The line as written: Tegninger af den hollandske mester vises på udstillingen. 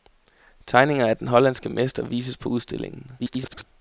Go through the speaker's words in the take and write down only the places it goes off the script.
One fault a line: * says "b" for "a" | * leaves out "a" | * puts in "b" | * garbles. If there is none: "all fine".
* garbles